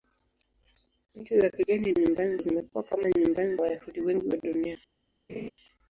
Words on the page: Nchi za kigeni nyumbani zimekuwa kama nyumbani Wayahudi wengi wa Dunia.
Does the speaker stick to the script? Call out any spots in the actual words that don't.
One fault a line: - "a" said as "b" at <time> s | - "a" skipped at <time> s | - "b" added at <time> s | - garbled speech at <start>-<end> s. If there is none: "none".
none